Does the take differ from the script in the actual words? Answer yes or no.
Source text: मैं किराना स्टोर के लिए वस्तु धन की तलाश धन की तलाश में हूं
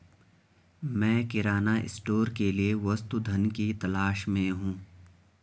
yes